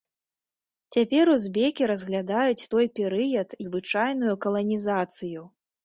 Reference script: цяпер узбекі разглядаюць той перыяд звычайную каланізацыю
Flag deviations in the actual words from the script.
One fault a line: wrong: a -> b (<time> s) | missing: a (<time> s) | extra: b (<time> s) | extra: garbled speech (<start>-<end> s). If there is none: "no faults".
no faults